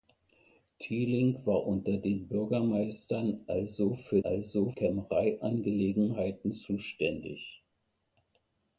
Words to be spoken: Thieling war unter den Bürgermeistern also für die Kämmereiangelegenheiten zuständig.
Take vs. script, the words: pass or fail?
fail